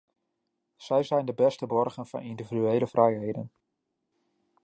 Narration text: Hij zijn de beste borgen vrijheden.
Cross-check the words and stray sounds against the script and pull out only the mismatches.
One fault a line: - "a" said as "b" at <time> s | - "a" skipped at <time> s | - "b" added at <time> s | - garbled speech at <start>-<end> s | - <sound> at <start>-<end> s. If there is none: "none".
- "Hij" said as "Zij" at 0.8 s
- "van individuele" added at 2.1 s